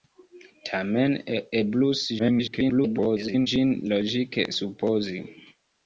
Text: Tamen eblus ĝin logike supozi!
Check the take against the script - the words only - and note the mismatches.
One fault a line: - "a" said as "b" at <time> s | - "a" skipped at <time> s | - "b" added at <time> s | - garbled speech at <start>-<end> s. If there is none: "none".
- garbled speech at 2.2-3.5 s